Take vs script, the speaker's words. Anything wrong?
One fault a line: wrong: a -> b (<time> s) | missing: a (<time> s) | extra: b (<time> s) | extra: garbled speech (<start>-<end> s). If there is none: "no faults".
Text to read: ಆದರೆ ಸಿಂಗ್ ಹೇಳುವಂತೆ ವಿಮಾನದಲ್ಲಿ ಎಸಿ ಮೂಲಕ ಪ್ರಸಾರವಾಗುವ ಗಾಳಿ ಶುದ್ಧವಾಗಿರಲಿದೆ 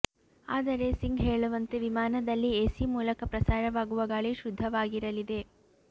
no faults